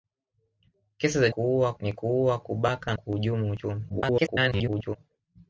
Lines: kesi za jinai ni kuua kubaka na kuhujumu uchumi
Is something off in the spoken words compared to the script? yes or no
yes